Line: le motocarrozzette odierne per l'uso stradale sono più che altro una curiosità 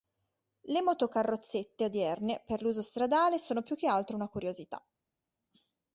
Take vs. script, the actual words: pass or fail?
pass